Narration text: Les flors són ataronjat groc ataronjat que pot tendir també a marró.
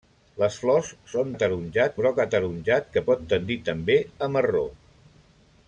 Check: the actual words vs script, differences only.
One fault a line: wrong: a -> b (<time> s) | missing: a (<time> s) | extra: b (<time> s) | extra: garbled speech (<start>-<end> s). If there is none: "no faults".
no faults